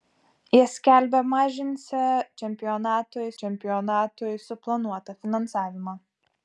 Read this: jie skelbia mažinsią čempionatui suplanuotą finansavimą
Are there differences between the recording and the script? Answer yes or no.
yes